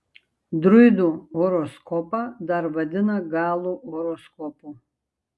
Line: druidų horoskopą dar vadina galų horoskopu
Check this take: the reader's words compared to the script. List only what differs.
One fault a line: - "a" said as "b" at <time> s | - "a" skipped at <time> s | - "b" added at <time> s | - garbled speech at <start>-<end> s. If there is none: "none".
none